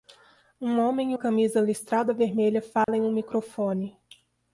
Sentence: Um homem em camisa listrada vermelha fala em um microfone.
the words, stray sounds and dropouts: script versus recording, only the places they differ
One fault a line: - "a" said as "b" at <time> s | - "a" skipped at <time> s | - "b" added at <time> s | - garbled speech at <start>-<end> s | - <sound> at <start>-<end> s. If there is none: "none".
- dropout at 2.8-2.9 s